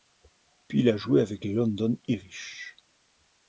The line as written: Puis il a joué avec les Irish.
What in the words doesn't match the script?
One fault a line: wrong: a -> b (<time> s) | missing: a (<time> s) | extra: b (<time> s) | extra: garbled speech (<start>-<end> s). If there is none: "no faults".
extra: London (1.5 s)